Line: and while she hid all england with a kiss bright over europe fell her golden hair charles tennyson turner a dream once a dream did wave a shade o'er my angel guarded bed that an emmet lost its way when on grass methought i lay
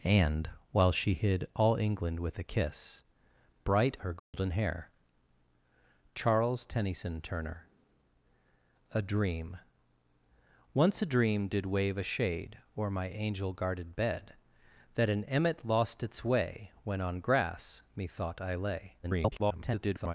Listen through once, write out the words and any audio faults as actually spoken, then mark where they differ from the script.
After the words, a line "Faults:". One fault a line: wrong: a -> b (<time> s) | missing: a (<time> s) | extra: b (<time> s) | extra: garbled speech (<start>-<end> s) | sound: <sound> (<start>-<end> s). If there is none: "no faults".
and while she hid all england with a kiss bright her golden hair charles tennyson turner a dream once a dream did wave a shade o'er my angel guarded bed that an emmet lost its way when on grass methought i lay [garbled]
Faults:
missing: over europe fell (4.0 s)
sound: dropout (4.2-4.3 s)
extra: garbled speech (19.0-20.1 s)